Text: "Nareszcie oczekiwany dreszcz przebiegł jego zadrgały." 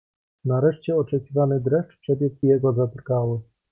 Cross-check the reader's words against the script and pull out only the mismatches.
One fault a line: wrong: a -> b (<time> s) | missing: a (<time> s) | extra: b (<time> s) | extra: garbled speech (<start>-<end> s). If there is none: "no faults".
no faults